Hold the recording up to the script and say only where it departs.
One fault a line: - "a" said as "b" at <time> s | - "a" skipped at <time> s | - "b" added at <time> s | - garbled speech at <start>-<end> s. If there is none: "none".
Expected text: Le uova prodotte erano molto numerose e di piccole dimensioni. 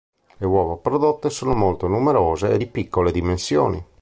- "erano" said as "sono" at 1.3 s